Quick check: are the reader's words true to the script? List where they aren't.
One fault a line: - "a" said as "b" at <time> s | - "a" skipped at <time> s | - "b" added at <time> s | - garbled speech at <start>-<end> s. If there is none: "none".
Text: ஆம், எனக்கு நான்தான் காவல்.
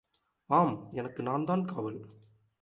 none